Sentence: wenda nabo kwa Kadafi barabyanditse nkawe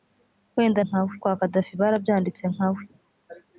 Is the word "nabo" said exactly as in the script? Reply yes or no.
no